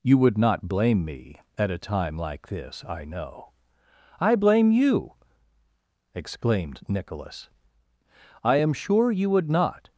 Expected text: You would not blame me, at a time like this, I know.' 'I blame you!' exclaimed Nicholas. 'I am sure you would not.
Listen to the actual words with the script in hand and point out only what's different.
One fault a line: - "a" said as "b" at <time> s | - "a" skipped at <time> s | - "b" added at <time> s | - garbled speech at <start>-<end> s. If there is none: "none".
none